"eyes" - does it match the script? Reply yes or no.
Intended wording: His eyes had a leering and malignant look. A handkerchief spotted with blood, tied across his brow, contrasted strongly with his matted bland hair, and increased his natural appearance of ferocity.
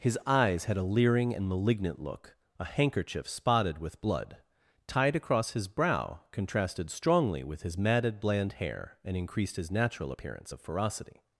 yes